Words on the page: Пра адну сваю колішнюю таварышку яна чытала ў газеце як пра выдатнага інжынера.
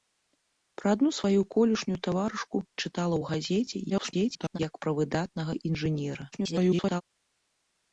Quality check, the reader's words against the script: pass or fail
fail